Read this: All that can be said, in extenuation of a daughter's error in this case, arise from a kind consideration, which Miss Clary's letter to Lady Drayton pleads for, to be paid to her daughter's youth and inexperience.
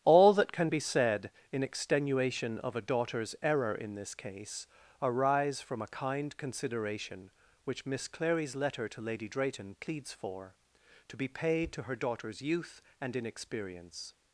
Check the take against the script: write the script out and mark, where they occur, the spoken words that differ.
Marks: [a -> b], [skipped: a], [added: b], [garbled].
All that can be said, in extenuation of a daughter's error in this case, arise from a kind consideration, which Miss Clary's letter to Lady Drayton pleads for, to be paid to her daughter's youth and inexperience.